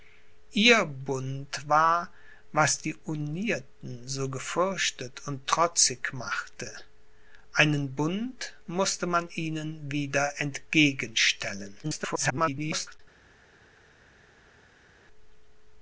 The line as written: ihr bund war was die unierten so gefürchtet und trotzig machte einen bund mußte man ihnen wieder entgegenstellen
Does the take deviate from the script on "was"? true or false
false